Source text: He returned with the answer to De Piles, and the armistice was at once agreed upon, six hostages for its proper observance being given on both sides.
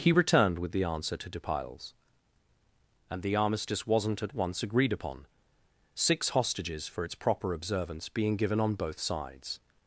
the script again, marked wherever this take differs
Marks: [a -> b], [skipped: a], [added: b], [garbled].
He returned with the answer to De Piles, and the armistice [was -> wasn't] at once agreed upon, six hostages for its proper observance being given on both sides.